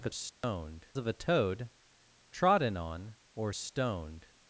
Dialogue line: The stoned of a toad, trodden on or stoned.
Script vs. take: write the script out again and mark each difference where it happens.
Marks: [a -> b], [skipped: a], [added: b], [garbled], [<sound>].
The stoned [dropout] of a toad, trodden on or stoned.